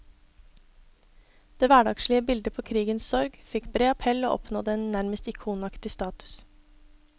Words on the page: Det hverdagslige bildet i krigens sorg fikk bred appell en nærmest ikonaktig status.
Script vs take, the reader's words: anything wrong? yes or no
yes